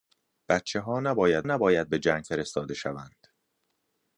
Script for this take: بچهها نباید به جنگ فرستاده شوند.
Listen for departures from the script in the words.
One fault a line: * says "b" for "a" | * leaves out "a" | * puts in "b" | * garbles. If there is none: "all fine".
* puts in "نباید"